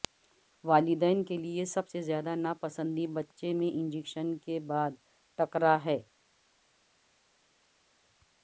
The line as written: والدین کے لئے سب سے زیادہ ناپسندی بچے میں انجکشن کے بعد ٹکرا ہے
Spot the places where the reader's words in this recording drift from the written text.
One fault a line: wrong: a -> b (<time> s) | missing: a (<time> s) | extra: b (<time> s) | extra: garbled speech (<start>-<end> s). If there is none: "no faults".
no faults